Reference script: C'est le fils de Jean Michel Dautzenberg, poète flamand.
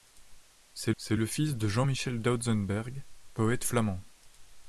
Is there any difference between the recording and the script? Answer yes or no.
yes